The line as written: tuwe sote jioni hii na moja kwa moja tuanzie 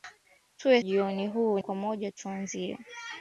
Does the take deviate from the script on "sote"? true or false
true